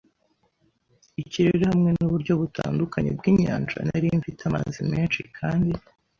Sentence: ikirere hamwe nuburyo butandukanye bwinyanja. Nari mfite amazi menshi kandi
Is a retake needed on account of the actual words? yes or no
no